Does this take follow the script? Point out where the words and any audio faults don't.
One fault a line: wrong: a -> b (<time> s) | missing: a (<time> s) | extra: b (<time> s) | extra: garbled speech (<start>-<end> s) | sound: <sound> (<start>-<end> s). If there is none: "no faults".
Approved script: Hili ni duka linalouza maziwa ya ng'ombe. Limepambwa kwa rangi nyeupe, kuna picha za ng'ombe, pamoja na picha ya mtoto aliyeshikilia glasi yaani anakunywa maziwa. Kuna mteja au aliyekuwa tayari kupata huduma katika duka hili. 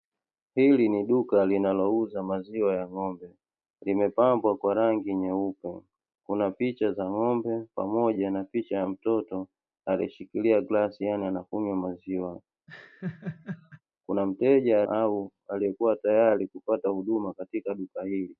sound: laugh (12.7-13.8 s)